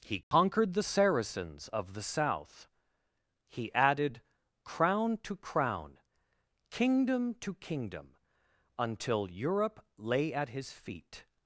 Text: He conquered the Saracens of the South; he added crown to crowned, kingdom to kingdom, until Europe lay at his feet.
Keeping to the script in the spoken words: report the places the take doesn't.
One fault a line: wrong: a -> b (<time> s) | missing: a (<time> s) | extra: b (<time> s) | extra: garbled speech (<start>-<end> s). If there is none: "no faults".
wrong: crowned -> crown (5.4 s)